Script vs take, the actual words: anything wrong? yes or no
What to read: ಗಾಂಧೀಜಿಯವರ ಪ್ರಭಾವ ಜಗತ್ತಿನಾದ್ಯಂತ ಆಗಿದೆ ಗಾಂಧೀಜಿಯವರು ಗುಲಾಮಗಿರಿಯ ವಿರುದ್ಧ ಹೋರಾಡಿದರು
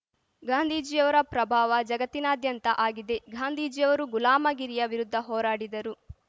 no